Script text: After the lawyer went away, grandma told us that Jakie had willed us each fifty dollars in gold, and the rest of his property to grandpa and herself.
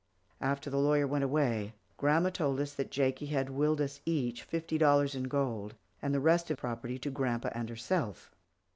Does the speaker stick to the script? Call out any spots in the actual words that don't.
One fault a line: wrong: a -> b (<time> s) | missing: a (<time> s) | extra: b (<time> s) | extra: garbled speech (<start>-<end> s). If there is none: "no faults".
missing: his (6.6 s)